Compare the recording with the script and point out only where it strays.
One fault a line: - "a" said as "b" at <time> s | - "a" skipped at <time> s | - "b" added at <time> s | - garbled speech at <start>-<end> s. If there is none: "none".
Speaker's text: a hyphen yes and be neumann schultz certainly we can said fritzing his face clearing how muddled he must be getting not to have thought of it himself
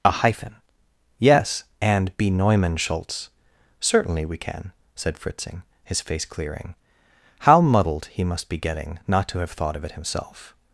none